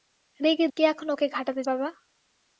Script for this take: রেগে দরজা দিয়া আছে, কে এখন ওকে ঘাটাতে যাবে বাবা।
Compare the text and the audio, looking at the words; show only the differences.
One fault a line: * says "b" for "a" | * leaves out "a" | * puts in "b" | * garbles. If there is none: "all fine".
* leaves out "দরজা দিয়া আছে"
* leaves out "যাবে"